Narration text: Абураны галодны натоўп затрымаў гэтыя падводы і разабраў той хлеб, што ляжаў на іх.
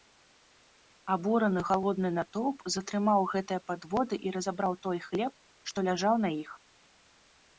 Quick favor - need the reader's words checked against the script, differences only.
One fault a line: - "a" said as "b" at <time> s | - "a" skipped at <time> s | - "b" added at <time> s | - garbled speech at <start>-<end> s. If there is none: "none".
none